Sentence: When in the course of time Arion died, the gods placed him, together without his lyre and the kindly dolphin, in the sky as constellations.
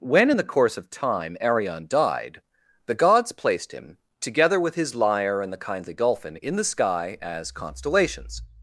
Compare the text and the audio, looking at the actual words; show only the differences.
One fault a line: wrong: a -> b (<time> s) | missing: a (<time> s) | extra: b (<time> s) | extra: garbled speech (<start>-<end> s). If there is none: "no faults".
wrong: without -> with (4.6 s)